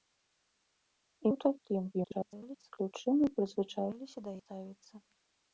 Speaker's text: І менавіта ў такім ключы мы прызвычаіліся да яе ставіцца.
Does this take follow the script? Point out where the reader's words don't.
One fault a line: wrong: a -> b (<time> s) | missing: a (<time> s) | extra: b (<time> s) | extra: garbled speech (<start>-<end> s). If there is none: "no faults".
missing: менавіта (1.3 s)
extra: garbled speech (1.9-2.7 s)
missing: яе (4.4 s)